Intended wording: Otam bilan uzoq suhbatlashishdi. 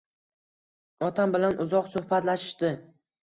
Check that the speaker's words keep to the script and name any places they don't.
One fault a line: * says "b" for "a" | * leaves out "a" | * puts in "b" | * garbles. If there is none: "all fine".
all fine